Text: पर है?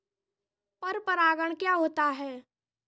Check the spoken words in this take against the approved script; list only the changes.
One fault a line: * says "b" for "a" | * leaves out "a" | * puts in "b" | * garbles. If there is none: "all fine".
* puts in "परागण क्या होता"